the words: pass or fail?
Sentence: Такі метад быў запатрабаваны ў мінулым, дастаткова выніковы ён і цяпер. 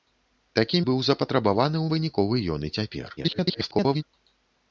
fail